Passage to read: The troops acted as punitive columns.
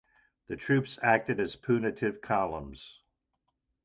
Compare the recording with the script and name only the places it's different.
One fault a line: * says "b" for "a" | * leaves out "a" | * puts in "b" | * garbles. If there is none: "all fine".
all fine